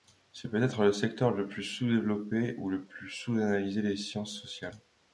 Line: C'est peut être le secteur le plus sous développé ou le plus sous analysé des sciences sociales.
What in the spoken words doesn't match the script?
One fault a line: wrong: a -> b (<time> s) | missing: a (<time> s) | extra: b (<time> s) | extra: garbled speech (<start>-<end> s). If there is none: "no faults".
no faults